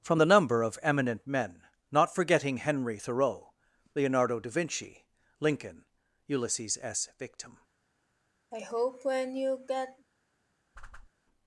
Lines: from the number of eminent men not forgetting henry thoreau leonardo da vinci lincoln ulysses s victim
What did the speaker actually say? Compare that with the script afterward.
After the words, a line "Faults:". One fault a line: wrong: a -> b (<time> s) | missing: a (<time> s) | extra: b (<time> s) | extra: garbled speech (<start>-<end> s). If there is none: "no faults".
from the number of eminent men not forgetting henry thoreau leonardo da vinci lincoln ulysses s victim
Faults:
no faults